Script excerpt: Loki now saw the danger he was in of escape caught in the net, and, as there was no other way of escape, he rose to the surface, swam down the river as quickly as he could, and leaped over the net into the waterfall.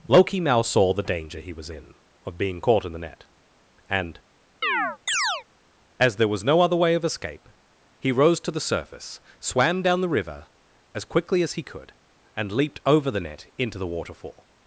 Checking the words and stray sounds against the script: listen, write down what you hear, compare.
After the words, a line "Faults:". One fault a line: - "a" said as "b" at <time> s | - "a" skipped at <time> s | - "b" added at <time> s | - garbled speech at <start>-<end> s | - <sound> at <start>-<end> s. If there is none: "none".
Loki now saw the danger he was in of being caught in the net, and, as there was no other way of escape, he rose to the surface, swam down the river as quickly as he could, and leaped over the net into the waterfall.
Faults:
- "escape" said as "being" at 2.4 s
- chirp at 4.6-5.4 s